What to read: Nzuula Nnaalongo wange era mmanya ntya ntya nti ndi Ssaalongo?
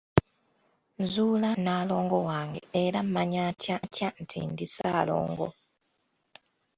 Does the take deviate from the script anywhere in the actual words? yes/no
no